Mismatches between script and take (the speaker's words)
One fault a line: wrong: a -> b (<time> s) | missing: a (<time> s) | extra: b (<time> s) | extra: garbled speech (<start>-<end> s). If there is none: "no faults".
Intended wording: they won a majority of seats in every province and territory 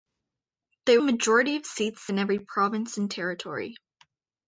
missing: won (1.0 s)